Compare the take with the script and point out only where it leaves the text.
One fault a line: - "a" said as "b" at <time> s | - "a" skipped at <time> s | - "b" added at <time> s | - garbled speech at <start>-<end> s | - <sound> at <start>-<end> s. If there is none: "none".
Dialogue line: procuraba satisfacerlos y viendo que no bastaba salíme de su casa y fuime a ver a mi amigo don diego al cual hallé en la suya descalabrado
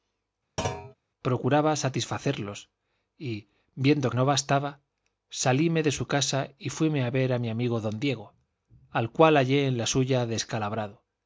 - thud at 0.6-0.9 s
- "que" skipped at 4.1 s